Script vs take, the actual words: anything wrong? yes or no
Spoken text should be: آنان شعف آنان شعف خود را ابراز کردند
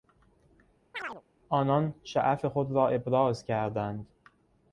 yes